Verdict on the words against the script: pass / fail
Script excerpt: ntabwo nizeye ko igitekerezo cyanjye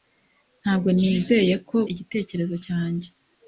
pass